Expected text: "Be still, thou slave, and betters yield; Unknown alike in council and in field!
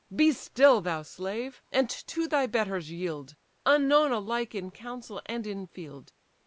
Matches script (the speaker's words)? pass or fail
fail